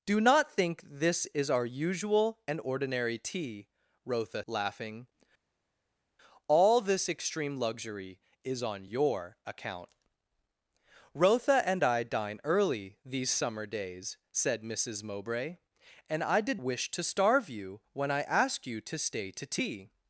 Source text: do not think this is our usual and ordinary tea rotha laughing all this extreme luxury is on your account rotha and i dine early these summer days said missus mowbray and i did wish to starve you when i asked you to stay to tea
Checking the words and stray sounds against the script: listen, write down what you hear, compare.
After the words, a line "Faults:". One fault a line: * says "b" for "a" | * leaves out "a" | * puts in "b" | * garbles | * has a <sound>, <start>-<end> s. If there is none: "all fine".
do not think this is our usual and ordinary tea rotha laughing all this extreme luxury is on your account rotha and i dine early these summer days said missus mowbray and i did wish to starve you when i asked you to stay to tea
Faults:
all fine